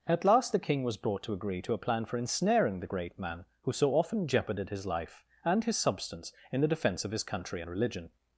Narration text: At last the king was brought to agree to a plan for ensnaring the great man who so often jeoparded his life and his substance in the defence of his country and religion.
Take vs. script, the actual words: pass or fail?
pass